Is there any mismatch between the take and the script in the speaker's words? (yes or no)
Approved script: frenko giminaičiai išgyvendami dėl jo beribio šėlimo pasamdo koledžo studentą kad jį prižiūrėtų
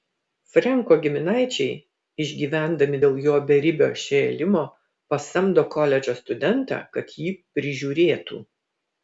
no